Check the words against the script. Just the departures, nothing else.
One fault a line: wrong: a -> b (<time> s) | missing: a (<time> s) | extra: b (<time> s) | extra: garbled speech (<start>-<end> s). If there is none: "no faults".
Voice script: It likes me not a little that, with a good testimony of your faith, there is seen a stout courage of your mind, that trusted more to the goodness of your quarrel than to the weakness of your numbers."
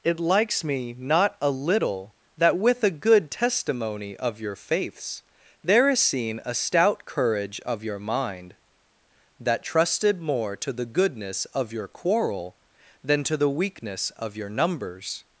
wrong: faith -> faiths (4.5 s)